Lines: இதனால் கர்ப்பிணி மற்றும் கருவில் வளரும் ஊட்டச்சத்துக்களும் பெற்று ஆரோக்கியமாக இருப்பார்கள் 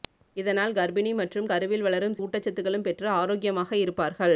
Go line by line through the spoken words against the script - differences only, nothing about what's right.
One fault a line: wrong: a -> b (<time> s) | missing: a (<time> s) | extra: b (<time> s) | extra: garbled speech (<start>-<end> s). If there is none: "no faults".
no faults